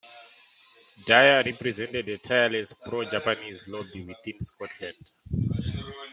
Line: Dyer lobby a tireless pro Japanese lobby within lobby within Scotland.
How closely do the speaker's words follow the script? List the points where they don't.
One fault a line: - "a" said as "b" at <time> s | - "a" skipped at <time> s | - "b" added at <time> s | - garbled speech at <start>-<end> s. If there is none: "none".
- "lobby" said as "represented" at 1.4 s
- "lobby within" skipped at 4.4 s